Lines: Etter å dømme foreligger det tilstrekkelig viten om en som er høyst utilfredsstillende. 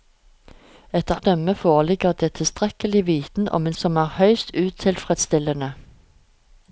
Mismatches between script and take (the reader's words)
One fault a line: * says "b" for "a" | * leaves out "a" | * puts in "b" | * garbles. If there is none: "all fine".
all fine